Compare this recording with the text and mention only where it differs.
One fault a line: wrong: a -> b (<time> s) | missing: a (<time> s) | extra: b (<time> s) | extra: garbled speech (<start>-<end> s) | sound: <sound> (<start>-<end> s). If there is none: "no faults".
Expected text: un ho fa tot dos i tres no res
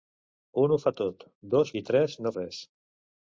no faults